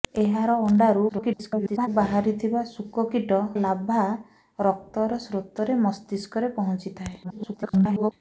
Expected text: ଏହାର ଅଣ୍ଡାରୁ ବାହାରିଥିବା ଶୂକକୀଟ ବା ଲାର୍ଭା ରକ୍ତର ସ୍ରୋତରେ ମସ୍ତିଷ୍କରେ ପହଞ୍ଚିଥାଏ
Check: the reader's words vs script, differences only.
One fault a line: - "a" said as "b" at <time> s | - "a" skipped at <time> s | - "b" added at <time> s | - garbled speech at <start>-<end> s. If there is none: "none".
- garbled speech at 1.1-1.9 s
- "ବା" skipped at 3.4 s
- garbled speech at 7.2-8.1 s